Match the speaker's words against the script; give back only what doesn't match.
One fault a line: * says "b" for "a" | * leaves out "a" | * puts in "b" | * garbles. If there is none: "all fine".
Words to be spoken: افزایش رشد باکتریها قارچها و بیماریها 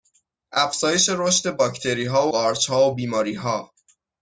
all fine